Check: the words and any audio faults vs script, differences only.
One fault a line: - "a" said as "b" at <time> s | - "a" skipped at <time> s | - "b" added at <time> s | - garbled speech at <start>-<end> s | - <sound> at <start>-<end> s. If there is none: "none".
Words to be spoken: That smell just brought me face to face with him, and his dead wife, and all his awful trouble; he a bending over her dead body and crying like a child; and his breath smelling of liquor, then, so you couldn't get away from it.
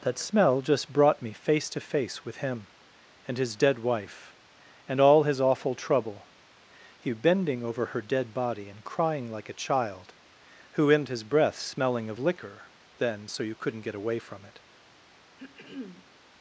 - "a" skipped at 7.1 s
- "and" said as "who in" at 10.7 s
- throat clearing at 15.4-16.1 s